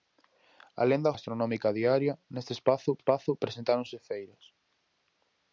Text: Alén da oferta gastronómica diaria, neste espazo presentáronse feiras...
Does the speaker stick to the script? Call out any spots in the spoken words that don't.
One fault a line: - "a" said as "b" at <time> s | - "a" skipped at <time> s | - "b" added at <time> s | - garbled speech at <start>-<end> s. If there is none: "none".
- "oferta" skipped at 1.1 s
- "espazo" added at 3.0 s